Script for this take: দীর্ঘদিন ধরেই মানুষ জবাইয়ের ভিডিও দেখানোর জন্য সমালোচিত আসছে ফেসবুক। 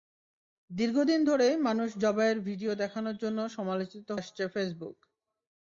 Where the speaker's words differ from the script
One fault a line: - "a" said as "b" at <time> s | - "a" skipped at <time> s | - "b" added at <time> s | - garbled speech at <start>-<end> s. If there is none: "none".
none